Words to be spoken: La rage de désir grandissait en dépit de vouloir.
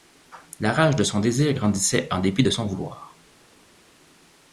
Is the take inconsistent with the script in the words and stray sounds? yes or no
yes